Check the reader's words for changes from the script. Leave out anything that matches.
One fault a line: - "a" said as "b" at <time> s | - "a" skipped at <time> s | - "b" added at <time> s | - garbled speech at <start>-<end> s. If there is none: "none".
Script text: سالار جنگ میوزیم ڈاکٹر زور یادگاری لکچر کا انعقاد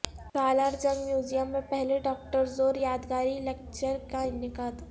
- "میں پہلے" added at 1.5 s